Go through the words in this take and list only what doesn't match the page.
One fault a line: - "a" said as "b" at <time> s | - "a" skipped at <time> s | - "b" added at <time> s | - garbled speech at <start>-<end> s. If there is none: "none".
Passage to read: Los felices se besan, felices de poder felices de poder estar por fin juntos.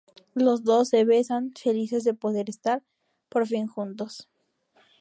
- "felices" said as "dos" at 0.6 s
- "felices de poder" skipped at 2.5 s